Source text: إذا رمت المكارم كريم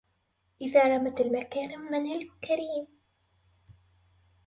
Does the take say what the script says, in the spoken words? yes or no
yes